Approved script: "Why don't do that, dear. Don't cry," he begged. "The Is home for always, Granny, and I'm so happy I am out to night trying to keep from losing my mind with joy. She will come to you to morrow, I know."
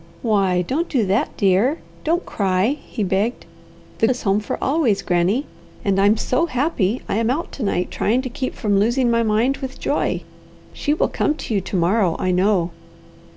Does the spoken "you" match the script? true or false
true